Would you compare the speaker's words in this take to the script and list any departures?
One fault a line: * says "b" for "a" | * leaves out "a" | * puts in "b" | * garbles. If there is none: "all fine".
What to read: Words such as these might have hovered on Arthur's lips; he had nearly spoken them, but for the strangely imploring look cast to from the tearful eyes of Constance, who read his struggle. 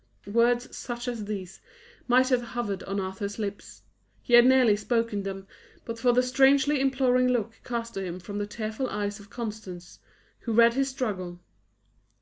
* puts in "him"